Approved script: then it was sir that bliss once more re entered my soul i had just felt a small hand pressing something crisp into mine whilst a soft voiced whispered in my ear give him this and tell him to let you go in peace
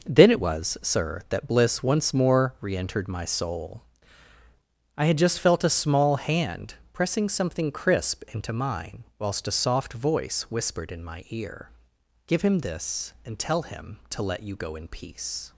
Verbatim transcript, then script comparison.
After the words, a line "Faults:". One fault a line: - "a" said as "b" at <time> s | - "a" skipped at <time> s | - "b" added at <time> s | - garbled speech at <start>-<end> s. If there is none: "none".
then it was sir that bliss once more re entered my soul i had just felt a small hand pressing something crisp into mine whilst a soft voice whispered in my ear give him this and tell him to let you go in peace
Faults:
- "voiced" said as "voice" at 9.9 s